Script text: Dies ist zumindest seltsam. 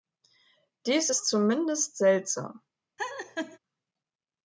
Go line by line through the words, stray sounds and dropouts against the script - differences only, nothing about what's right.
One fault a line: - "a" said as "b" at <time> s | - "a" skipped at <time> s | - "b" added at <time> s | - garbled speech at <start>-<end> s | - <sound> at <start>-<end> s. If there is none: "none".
- laugh at 3.0-3.6 s